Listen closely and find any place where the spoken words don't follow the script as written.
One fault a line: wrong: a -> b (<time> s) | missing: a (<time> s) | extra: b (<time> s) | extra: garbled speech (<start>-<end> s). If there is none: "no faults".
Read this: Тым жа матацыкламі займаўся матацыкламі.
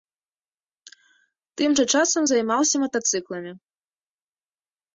wrong: матацыкламі -> часам (2.0 s)